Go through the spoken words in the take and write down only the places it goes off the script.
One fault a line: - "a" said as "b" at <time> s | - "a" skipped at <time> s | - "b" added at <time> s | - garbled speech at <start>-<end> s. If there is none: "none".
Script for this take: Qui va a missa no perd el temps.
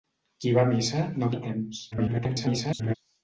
- "perd" skipped at 1.3 s
- garbled speech at 1.9-2.9 s